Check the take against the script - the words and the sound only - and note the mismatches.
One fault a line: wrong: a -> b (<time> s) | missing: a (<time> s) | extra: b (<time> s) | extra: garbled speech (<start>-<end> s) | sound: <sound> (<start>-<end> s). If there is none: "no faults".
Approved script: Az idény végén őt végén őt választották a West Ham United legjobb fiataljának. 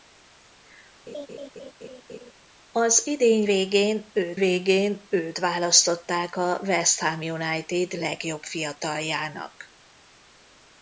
sound: laugh (1.1-2.3 s)